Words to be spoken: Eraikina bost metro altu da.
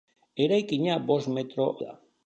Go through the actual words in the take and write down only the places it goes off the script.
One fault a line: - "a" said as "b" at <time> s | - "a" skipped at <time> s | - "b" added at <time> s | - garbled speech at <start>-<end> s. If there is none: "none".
- "altu" skipped at 1.7 s